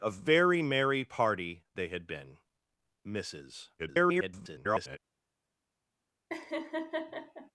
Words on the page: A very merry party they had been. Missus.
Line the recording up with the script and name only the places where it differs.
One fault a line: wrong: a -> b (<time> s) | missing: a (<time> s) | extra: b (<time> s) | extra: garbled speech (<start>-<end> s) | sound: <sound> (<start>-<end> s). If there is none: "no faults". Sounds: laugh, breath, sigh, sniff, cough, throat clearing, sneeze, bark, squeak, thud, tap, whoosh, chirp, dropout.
extra: garbled speech (3.8-5.0 s)
sound: laugh (6.3-7.5 s)